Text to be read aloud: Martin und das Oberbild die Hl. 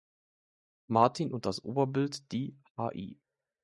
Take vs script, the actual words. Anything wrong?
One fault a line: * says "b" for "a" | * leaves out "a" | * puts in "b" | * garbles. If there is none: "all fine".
all fine